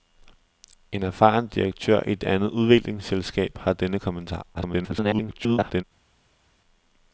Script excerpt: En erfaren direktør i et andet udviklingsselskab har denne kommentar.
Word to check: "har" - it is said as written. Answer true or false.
true